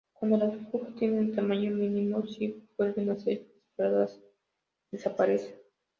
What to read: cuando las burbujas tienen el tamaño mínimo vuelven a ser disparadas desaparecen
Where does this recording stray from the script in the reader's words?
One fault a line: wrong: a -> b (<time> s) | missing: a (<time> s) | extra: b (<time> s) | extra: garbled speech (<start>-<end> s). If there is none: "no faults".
extra: si (2.2 s)